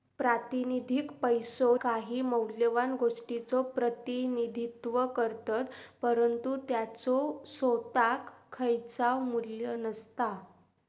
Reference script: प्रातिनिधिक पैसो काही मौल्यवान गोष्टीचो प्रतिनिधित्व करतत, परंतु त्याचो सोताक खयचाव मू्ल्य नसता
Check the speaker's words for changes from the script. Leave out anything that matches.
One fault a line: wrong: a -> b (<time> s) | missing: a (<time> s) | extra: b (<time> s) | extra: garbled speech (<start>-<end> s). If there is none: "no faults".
no faults